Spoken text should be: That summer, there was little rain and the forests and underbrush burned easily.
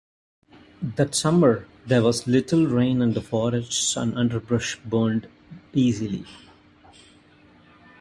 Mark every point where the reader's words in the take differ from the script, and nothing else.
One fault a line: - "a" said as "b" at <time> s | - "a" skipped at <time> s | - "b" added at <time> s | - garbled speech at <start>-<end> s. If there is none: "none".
none